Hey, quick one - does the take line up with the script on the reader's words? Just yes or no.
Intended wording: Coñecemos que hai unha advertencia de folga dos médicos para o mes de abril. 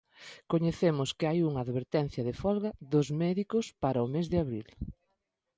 yes